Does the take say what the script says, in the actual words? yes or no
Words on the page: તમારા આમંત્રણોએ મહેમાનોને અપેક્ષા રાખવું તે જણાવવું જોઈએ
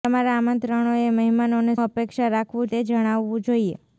yes